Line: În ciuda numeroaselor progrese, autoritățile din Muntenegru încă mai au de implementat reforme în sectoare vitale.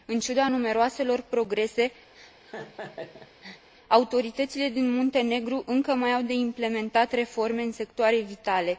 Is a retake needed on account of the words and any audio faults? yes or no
yes